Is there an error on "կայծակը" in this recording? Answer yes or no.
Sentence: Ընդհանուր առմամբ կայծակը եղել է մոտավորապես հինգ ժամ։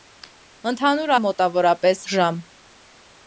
yes